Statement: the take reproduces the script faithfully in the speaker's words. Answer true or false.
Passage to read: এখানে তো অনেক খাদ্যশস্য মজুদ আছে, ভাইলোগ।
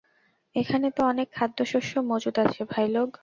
true